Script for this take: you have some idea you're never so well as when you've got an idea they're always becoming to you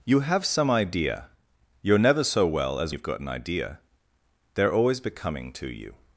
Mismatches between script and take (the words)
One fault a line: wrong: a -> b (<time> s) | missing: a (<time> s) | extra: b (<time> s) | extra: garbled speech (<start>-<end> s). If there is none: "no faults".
missing: when (2.9 s)